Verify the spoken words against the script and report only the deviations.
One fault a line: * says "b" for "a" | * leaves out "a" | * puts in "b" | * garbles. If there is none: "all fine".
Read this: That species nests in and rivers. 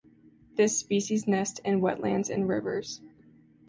* says "This" for "That"
* puts in "wetlands"